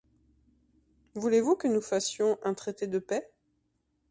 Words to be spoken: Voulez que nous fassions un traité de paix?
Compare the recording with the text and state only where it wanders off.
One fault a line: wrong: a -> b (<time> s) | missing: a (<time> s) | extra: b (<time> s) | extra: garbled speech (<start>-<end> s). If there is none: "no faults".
extra: vous (1.4 s)